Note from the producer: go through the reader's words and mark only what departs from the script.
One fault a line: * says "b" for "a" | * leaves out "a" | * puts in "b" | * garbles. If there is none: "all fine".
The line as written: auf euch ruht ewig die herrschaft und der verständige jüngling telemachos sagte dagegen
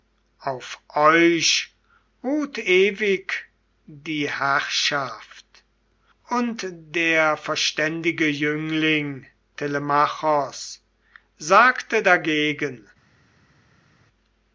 all fine